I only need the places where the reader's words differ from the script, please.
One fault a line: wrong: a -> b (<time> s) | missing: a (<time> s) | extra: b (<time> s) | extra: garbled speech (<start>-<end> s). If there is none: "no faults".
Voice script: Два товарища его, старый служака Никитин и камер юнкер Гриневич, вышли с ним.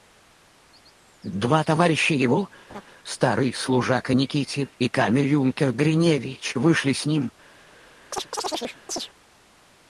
no faults